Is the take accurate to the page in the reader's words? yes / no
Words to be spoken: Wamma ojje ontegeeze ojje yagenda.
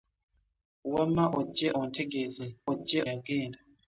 yes